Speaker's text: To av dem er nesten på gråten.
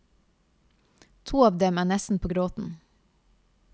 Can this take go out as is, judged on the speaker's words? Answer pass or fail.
pass